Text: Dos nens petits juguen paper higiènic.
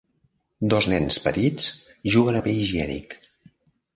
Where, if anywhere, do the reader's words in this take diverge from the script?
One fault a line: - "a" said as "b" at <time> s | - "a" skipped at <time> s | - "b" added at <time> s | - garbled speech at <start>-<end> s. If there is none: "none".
none